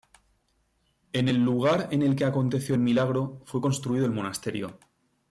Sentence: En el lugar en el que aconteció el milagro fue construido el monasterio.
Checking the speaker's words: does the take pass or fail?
pass